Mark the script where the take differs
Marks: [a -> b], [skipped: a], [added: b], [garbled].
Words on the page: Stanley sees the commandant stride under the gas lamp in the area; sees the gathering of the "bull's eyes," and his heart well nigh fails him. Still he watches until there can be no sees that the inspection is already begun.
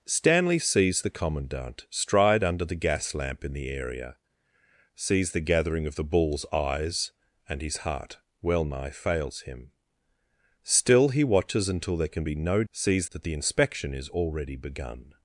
Stanley sees the commandant stride under the gas lamp in the area; sees the gathering of the "bull's eyes," and his heart well nigh fails him. Still he watches until there can be no sees that the inspection is already begun.